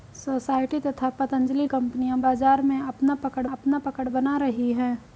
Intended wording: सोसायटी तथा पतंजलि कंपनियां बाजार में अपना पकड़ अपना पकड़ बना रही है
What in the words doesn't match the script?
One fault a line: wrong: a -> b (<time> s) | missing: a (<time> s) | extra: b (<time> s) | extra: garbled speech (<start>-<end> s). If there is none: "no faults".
no faults